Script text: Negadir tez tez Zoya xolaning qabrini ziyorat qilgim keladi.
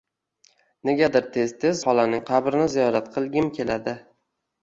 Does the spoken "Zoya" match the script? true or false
false